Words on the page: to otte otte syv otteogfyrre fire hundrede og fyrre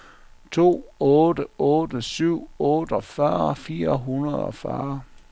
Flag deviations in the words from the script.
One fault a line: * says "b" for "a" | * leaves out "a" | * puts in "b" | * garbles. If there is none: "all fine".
all fine